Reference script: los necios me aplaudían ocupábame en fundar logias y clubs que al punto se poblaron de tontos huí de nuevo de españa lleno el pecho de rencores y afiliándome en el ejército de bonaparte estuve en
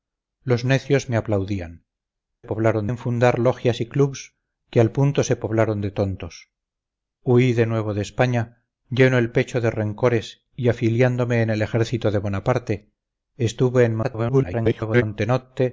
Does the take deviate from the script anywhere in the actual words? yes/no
yes